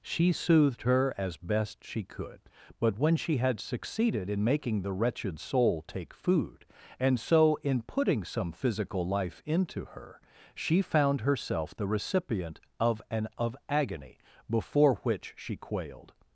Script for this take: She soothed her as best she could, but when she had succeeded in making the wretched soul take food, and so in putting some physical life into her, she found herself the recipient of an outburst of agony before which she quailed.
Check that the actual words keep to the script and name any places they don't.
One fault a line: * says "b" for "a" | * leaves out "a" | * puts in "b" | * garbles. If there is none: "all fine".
* leaves out "outburst"